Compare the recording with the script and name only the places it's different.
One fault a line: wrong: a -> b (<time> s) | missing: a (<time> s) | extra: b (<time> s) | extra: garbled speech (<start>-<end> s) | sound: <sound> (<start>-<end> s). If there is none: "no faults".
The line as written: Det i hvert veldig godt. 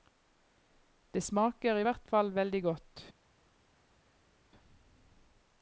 extra: smaker (1.2 s)
extra: fall (2.1 s)